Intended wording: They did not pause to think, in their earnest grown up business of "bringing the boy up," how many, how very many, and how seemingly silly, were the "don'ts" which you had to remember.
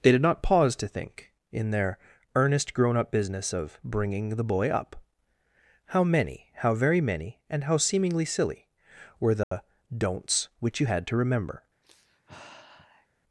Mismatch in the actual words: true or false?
false